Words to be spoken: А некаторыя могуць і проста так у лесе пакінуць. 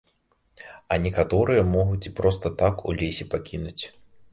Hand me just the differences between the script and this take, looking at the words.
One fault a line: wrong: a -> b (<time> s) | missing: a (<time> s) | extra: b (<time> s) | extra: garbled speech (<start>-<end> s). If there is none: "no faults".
no faults